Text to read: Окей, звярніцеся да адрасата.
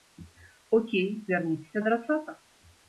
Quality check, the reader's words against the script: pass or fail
fail